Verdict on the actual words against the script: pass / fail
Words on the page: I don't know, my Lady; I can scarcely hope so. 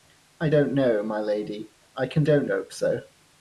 fail